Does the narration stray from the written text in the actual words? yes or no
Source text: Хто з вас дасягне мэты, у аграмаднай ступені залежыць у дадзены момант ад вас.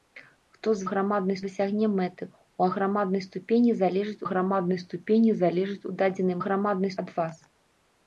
yes